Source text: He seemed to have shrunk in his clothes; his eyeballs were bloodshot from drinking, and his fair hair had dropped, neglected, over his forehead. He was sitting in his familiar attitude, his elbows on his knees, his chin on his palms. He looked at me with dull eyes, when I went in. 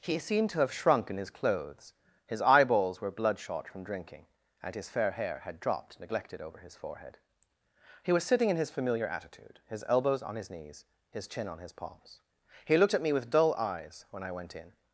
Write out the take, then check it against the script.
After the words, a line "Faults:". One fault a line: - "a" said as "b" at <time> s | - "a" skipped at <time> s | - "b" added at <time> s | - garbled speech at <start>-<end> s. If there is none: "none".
He seemed to have shrunk in his clothes; his eyeballs were bloodshot from drinking, and his fair hair had dropped, neglected, over his forehead. He was sitting in his familiar attitude, his elbows on his knees, his chin on his palms. He looked at me with dull eyes, when I went in.
Faults:
none